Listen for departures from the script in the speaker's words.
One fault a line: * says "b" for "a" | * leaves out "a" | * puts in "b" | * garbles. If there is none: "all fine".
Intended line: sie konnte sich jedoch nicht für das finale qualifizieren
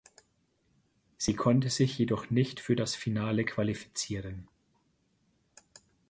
all fine